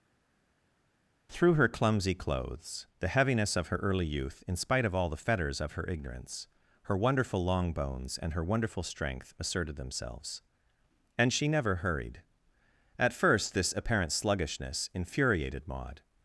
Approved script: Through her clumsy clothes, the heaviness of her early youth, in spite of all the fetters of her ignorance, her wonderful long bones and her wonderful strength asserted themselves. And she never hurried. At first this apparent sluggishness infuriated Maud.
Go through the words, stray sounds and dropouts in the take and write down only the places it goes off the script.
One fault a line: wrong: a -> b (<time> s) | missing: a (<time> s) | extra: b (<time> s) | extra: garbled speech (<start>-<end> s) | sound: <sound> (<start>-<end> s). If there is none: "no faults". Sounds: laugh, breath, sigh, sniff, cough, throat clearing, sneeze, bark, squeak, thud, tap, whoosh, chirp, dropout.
no faults